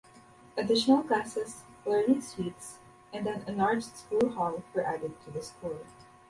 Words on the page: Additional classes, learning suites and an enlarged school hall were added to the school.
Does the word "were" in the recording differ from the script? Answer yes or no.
no